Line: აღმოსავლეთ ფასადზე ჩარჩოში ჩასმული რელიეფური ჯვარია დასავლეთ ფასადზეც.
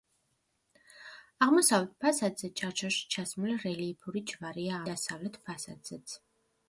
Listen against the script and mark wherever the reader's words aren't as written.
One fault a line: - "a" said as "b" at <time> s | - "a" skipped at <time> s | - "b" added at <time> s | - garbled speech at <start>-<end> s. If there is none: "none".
none